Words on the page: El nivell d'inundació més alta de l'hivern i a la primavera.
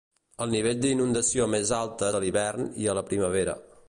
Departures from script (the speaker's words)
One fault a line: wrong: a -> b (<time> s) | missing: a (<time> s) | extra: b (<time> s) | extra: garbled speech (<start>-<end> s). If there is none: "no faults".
no faults